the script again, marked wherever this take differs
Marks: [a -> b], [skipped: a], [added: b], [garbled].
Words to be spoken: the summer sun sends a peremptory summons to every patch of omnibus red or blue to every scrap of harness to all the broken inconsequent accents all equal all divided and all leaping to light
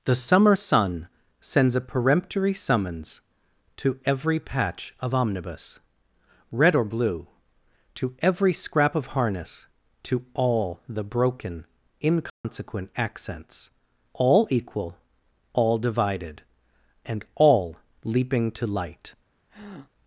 the summer sun sends a peremptory summons to every patch of omnibus red or blue to every scrap of harness to all the broken inconsequent accents all equal all divided and all leaping to light